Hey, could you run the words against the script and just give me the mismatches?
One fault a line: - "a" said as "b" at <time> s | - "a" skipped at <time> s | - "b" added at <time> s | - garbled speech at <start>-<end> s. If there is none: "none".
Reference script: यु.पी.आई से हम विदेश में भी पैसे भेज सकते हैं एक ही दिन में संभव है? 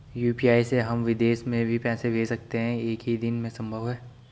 none